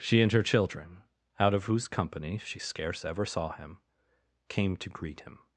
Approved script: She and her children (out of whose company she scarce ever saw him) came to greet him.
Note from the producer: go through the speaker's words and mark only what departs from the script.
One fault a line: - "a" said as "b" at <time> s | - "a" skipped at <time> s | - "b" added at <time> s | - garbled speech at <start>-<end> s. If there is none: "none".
none